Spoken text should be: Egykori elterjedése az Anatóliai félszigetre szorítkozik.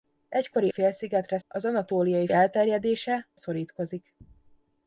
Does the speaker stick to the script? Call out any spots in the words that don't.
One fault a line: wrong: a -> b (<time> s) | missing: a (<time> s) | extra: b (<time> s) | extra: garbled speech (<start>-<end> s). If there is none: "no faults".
wrong: elterjedése -> félszigetre (0.7 s)
wrong: félszigetre -> elterjedése (2.3 s)